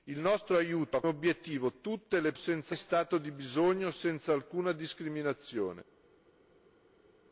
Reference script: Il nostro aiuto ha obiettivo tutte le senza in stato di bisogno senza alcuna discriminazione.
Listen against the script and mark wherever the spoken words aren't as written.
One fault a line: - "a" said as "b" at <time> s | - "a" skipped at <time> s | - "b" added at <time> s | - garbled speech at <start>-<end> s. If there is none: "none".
none